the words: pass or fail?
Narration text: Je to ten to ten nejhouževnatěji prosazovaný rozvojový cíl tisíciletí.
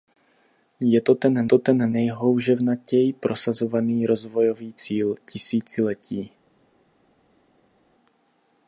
pass